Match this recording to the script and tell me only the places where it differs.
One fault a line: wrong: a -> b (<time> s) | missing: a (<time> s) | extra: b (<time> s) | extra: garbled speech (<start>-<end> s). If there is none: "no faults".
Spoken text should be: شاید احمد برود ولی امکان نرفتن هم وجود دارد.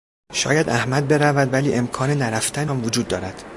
no faults